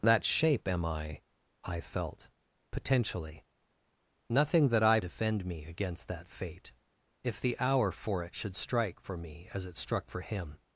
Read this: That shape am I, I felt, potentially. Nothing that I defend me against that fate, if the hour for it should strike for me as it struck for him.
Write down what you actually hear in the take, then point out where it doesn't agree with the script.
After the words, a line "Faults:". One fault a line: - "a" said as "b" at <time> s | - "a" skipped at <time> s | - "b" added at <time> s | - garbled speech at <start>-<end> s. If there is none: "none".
That shape am I, I felt, potentially. Nothing that I defend me against that fate, if the hour for it should strike for me as it struck for him.
Faults:
none